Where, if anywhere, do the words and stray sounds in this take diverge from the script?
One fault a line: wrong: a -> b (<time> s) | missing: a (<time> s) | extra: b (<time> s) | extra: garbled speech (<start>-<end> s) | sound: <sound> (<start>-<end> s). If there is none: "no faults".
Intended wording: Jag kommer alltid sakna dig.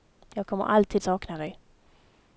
no faults